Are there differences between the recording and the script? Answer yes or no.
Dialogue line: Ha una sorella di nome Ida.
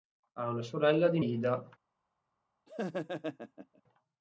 yes